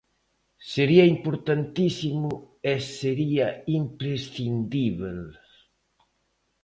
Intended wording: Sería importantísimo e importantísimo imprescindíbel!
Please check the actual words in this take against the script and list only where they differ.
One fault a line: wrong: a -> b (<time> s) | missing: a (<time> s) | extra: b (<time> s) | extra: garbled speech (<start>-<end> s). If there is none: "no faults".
wrong: importantísimo -> sería (3.0 s)